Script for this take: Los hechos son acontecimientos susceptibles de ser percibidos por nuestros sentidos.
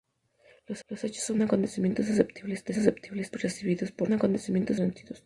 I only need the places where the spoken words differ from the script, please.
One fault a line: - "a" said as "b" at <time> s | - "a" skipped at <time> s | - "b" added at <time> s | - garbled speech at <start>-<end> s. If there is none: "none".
- "los" added at 0.9 s
- "ser" said as "susceptibles" at 2.7 s
- "nuestros" said as "acontecimientos" at 4.1 s